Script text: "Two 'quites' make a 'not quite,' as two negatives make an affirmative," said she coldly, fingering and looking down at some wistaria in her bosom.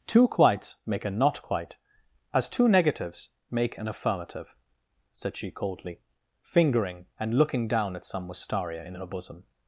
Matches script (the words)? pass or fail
pass